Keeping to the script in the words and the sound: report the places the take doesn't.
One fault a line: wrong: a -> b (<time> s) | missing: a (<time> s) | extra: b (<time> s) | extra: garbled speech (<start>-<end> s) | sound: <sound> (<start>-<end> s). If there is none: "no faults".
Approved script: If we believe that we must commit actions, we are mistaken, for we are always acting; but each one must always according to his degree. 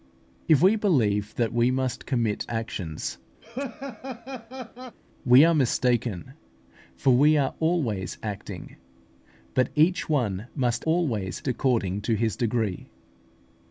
sound: laugh (3.4-5.0 s)